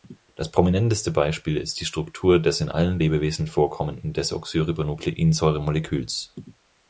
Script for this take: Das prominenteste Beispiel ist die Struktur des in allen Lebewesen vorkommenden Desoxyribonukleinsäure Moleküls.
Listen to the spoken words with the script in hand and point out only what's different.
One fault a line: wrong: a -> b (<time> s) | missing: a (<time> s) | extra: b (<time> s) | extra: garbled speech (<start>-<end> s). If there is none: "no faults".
no faults